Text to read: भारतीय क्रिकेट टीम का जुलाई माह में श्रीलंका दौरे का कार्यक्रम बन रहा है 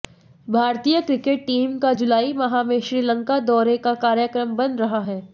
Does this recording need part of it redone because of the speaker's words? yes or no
no